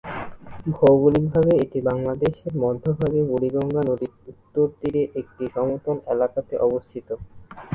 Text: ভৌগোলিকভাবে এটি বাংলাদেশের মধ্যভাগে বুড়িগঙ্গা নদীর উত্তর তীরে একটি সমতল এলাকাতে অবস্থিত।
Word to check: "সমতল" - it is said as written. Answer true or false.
true